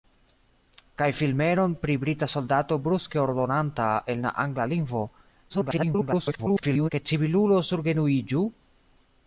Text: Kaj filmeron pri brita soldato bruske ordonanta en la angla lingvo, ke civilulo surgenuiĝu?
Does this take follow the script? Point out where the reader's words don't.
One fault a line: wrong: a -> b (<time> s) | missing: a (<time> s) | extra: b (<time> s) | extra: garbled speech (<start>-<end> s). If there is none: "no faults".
extra: garbled speech (5.5-6.9 s)